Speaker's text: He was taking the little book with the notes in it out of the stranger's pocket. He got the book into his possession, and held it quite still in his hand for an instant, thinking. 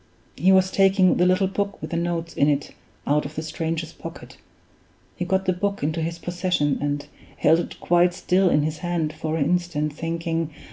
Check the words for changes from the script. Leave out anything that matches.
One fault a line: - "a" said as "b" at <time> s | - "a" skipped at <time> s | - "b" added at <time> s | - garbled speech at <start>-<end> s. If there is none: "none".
none